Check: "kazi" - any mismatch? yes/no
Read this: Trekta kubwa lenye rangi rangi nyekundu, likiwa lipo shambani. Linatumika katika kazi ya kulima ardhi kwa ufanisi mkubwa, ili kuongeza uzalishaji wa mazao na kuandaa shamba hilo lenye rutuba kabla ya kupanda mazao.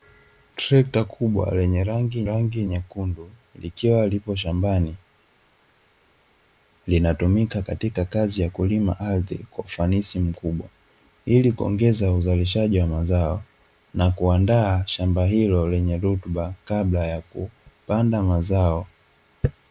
no